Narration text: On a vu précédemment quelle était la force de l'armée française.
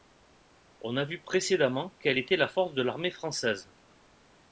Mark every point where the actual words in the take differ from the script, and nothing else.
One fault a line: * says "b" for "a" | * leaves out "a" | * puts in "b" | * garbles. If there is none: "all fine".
all fine